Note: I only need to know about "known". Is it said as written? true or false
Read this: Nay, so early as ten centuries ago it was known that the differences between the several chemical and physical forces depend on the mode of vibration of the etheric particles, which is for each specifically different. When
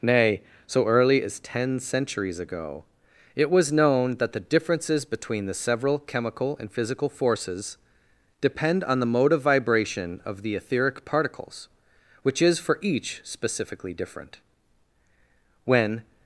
true